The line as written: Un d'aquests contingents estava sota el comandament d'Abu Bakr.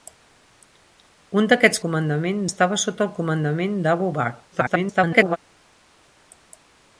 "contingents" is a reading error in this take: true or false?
true